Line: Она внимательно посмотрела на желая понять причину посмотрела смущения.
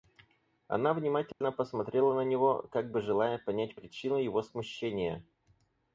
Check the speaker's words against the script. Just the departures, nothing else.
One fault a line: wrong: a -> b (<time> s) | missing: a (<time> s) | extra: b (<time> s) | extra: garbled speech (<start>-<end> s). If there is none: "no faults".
extra: него как бы (2.3 s)
wrong: посмотрела -> его (4.2 s)